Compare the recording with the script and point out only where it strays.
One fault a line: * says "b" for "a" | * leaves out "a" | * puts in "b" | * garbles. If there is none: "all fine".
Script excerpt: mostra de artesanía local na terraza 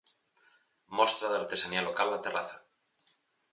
all fine